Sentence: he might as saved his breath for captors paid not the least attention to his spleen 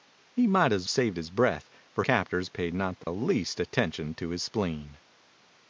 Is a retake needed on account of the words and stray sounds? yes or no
yes